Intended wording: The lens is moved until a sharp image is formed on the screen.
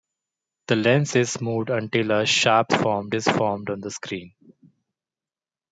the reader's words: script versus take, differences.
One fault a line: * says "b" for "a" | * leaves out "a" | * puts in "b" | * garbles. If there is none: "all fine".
* says "formed" for "image"